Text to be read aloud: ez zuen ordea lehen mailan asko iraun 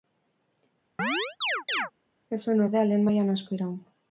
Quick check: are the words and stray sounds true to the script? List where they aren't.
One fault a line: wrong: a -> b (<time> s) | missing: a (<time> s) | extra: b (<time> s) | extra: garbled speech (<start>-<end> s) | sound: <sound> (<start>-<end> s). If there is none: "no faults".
sound: chirp (1.0-1.9 s)